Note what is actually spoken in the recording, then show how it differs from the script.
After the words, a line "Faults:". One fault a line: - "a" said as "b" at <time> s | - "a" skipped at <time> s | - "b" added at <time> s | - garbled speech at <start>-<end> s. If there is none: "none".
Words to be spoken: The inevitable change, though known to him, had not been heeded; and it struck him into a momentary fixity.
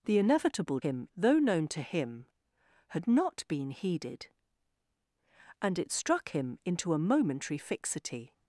The inevitable him, though known to him, had not been heeded; and it struck him into a momentary fixity.
Faults:
- "change" said as "him" at 0.8 s